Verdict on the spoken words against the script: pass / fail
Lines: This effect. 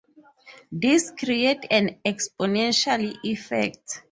fail